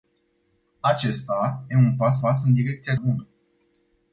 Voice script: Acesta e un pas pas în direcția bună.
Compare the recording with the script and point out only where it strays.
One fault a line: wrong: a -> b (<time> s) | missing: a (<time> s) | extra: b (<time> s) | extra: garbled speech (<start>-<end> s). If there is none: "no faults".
no faults